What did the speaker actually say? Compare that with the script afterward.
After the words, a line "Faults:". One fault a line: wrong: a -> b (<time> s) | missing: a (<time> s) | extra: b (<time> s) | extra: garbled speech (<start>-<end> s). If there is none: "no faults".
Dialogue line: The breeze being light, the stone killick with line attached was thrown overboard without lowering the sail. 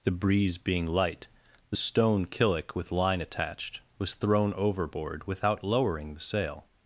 The breeze being light, the stone killick with line attached was thrown overboard without lowering the sail.
Faults:
no faults